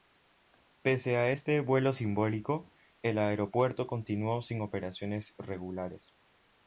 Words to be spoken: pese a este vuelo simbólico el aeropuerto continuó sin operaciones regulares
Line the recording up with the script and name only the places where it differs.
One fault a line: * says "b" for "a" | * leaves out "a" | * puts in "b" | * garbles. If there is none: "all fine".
all fine